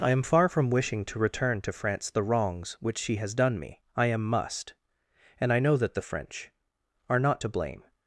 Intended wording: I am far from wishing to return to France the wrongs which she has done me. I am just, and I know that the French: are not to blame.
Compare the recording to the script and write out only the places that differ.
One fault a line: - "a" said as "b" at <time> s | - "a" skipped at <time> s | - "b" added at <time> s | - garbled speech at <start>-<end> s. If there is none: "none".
- "just" said as "must" at 4.2 s